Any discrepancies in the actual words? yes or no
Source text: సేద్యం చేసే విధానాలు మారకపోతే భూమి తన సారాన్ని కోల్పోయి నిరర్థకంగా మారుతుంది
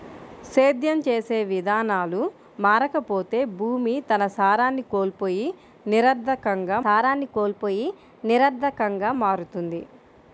yes